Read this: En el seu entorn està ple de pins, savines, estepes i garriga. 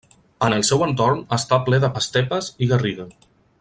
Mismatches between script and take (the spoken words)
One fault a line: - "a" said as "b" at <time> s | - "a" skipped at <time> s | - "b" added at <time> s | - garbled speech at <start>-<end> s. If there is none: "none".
- "pins savines" skipped at 1.9 s